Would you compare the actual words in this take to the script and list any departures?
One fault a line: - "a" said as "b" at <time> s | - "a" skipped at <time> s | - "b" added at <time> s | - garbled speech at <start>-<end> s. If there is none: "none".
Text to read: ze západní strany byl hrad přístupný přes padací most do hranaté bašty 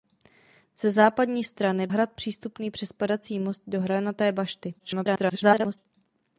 - "byl" skipped at 1.9 s
- garbled speech at 4.8-5.9 s